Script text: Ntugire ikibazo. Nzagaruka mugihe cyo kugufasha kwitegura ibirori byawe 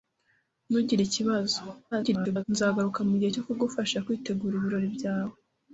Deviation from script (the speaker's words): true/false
true